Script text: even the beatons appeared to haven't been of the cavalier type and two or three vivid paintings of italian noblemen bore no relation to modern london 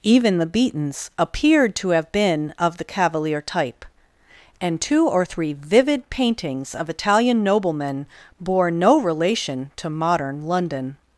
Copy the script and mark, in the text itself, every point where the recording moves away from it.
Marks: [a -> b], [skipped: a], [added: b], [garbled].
even the beatons appeared to [haven't -> have] been of the cavalier type and two or three vivid paintings of italian noblemen bore no relation to modern london